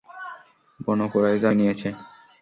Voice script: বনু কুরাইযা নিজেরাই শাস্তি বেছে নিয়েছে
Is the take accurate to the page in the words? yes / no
no